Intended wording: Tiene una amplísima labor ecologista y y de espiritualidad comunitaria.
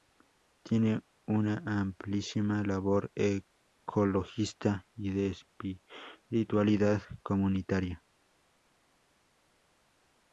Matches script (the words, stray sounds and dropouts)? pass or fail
fail